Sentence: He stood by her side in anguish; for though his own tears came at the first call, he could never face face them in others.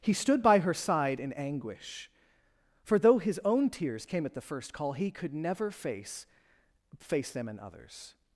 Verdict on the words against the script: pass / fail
pass